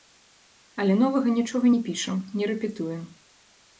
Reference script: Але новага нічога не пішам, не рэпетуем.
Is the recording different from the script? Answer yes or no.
no